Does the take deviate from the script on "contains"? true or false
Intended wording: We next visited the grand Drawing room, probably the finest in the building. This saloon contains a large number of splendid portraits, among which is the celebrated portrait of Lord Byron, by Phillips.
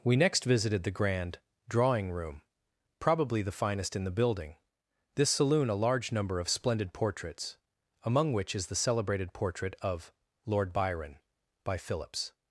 true